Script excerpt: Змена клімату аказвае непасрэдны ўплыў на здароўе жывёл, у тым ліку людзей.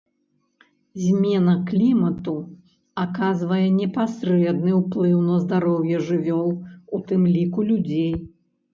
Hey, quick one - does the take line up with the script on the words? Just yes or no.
yes